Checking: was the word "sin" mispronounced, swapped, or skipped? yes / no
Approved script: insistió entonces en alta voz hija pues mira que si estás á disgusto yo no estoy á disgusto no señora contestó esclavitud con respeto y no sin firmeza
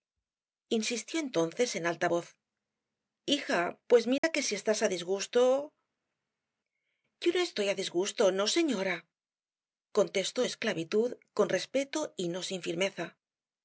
no